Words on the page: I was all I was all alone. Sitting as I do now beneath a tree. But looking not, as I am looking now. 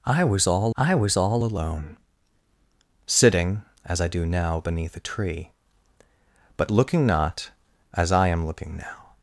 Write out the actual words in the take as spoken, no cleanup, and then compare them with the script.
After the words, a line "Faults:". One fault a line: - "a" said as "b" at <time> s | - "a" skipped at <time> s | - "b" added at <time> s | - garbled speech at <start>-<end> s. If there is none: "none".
I was all I was all alone. Sitting as I do now beneath a tree. But looking not, as I am looking now.
Faults:
none